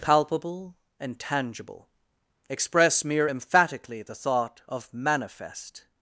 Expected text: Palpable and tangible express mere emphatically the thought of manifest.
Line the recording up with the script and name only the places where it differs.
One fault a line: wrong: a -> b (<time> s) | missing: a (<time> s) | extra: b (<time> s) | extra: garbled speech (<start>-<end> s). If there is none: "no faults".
no faults